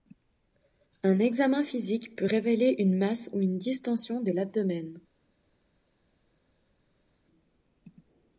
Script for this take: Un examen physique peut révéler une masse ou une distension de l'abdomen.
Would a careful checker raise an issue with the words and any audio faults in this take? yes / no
no